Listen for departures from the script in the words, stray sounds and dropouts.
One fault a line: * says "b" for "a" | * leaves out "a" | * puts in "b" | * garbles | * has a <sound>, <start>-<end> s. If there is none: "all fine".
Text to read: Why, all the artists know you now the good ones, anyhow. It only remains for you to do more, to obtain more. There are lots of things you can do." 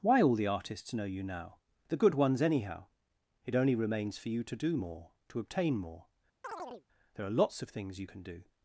* has a chirp, 6.4-6.8 s